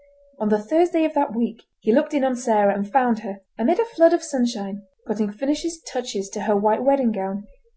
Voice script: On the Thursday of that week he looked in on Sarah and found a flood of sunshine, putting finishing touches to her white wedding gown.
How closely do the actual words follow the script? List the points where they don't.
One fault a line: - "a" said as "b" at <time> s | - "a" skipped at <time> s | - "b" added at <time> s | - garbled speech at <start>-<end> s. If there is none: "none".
- "her amid" added at 3.2 s